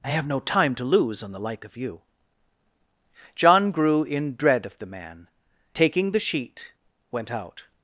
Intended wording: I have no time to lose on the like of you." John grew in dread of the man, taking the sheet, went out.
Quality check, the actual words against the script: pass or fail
pass